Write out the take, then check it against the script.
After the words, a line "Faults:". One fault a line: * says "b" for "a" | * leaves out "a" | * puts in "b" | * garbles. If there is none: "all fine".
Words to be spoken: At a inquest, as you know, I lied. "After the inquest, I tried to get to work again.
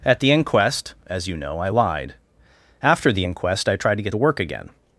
At the inquest, as you know, I lied. "After the inquest, I tried to get to work again.
Faults:
* says "the" for "a"